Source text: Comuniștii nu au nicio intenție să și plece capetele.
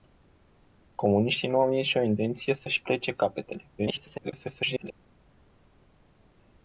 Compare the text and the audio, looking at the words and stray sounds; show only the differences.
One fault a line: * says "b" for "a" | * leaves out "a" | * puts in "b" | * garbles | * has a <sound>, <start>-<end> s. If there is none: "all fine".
* garbles